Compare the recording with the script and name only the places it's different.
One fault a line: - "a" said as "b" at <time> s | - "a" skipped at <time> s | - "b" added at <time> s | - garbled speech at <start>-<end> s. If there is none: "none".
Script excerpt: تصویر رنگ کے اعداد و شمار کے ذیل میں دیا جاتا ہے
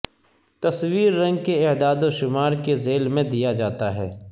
none